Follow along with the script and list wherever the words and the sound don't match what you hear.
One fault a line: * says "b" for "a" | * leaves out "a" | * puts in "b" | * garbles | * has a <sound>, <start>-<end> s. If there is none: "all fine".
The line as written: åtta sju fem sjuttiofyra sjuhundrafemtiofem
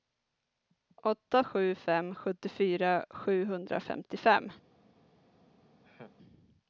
* has a laugh, 5.8-6.2 s